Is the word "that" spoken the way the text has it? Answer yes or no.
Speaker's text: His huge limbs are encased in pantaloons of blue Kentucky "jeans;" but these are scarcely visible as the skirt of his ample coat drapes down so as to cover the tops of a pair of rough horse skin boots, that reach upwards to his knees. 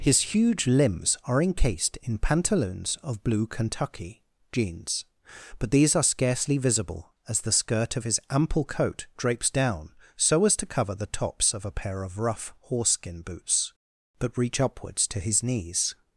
no